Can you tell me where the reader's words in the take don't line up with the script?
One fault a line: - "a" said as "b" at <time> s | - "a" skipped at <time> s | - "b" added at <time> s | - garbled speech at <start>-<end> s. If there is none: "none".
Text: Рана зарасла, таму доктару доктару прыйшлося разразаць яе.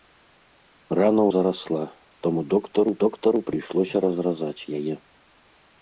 none